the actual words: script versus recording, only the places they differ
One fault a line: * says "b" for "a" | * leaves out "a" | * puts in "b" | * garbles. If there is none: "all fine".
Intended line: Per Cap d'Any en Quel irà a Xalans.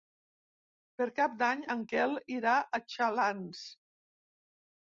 all fine